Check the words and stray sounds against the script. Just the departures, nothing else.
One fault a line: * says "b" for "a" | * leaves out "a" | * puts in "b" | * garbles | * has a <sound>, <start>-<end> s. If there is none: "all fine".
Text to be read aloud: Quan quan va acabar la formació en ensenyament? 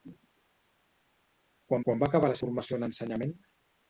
all fine